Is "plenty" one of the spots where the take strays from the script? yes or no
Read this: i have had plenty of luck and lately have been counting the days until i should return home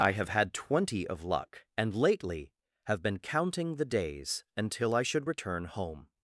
yes